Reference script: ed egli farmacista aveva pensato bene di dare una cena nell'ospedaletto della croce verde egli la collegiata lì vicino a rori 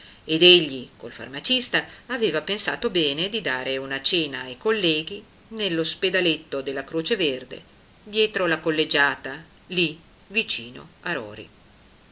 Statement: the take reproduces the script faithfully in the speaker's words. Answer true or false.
false